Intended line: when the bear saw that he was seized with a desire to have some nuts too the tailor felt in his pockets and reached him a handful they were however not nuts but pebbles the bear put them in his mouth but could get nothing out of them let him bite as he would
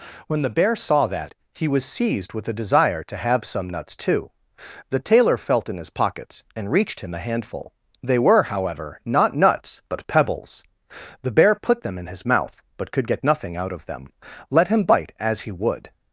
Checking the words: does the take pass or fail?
pass